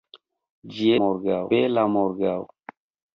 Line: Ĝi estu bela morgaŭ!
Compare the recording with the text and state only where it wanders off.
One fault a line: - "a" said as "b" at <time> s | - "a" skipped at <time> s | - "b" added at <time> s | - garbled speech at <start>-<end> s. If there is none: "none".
- "estu" said as "morgaŭ" at 1.0 s